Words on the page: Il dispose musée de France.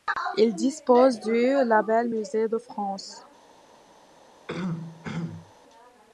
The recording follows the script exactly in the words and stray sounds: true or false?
false